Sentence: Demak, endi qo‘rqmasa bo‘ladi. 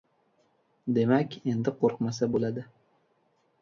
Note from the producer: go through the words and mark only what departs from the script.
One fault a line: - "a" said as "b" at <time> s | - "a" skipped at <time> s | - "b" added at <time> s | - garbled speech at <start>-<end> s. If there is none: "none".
none